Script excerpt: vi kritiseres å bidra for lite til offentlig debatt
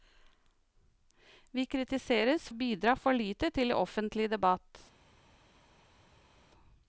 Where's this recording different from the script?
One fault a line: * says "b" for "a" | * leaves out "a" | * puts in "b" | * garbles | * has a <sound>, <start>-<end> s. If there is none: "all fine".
all fine